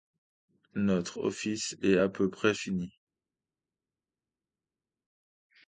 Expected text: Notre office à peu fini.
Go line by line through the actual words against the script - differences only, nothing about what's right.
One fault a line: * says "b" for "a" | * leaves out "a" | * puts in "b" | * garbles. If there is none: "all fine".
* puts in "est"
* puts in "près"